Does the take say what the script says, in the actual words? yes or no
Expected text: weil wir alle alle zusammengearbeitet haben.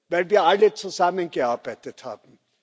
no